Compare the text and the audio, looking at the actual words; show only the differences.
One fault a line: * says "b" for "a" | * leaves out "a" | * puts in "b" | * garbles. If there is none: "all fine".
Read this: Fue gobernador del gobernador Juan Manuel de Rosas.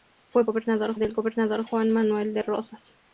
all fine